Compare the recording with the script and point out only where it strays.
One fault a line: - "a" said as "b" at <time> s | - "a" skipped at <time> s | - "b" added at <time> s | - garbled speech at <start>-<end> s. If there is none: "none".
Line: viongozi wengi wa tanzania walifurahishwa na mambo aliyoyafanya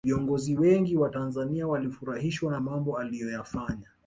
none